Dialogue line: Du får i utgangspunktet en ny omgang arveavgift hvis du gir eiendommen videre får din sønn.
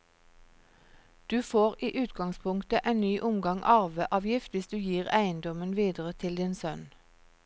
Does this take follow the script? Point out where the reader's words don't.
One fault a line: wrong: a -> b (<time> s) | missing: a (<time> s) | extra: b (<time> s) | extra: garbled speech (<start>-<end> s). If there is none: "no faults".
wrong: får -> til (6.1 s)